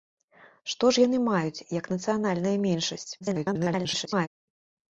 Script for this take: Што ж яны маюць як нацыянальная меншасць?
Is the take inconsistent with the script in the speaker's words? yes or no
yes